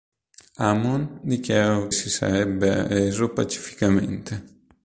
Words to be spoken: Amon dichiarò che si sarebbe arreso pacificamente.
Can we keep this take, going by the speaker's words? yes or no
no